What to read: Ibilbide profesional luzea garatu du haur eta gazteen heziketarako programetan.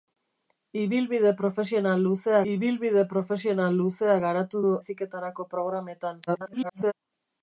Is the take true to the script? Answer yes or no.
no